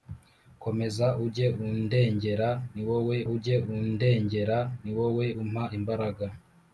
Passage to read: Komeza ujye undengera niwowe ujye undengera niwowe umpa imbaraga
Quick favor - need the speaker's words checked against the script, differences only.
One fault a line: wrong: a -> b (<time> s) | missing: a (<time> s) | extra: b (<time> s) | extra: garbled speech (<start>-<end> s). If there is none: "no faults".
no faults